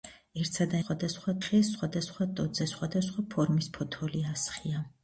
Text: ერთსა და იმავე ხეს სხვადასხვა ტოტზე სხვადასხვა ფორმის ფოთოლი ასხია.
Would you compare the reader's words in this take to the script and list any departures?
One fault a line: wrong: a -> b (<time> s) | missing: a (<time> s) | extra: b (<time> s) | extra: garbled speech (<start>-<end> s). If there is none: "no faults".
wrong: იმავე -> სხვადასხვა (0.8 s)